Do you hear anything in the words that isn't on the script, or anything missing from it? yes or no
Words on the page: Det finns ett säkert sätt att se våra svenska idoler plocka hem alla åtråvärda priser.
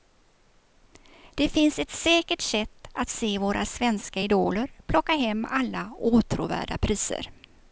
no